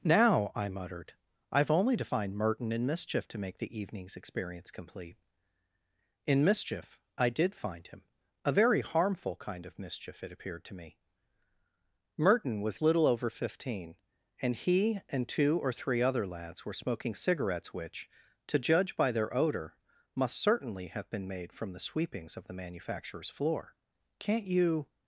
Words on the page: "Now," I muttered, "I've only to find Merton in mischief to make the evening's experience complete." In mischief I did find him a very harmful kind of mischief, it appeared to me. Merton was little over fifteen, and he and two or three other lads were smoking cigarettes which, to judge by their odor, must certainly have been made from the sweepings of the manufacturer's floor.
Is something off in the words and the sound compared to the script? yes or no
yes